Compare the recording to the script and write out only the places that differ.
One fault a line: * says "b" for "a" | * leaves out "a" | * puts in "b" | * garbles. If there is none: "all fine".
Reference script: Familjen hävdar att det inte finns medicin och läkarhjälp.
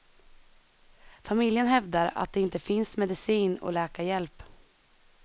all fine